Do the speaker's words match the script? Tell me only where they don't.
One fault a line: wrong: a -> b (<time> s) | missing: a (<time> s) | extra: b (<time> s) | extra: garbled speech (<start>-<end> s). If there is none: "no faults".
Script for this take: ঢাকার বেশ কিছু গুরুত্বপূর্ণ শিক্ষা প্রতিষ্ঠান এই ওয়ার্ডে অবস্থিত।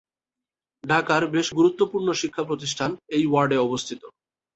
missing: কিছু (1.5 s)